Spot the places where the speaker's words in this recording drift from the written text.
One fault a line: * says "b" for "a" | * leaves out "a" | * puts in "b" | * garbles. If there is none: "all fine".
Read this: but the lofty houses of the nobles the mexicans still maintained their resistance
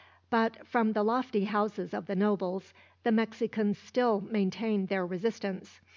* puts in "from"